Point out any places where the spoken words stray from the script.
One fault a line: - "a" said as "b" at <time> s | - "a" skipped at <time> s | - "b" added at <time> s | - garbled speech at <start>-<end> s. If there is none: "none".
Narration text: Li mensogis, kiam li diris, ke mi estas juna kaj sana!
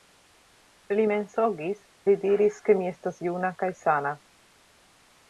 - "kiam" skipped at 1.8 s